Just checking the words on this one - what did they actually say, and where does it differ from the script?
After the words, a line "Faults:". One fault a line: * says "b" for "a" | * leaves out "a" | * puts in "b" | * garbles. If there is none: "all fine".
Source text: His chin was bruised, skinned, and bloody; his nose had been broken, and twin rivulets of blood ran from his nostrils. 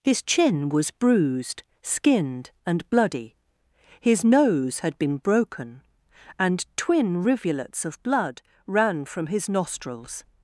His chin was bruised, skinned, and bloody; his nose had been broken, and twin rivulets of blood ran from his nostrils.
Faults:
all fine